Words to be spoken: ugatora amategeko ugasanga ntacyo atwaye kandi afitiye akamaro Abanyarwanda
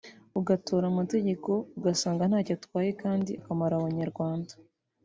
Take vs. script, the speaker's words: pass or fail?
fail